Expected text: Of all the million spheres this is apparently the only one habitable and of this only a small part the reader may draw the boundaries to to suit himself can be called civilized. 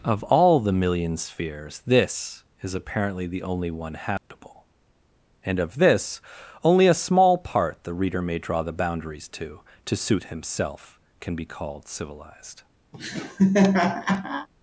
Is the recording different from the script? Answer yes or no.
no